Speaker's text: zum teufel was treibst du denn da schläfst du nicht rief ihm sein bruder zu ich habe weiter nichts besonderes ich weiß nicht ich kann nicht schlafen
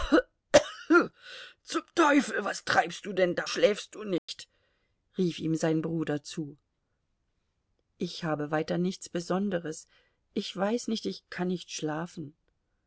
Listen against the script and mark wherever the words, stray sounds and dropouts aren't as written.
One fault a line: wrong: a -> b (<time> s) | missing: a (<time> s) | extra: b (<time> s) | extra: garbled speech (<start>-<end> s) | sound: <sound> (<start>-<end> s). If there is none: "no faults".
sound: dropout (4.2-4.3 s)